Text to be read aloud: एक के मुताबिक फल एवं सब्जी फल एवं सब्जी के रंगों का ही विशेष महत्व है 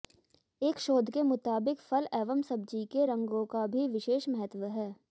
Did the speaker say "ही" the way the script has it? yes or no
no